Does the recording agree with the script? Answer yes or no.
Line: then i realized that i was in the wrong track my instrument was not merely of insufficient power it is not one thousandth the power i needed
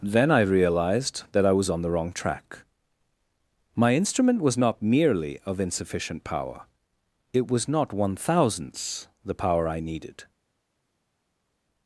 no